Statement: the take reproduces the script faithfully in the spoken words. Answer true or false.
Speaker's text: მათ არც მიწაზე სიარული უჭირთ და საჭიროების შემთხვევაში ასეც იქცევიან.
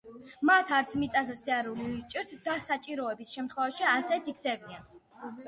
true